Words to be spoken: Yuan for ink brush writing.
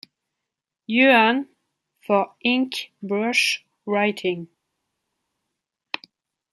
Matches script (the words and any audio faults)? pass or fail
pass